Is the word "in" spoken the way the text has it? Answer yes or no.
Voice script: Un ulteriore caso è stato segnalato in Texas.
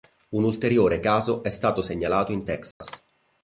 yes